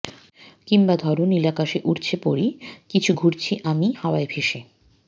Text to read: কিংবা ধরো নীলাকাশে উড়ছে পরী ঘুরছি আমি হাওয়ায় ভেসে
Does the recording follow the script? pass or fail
fail